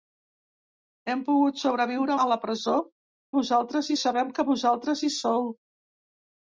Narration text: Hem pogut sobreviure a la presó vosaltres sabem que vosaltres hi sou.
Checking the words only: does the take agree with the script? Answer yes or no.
yes